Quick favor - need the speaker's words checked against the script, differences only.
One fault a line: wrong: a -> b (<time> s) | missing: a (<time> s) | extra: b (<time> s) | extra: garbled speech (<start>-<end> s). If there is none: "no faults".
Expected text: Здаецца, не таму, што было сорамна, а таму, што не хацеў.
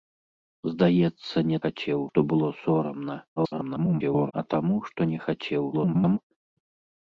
wrong: таму -> хацеў (1.6 s)
extra: garbled speech (3.4-4.3 s)
extra: garbled speech (5.7-6.2 s)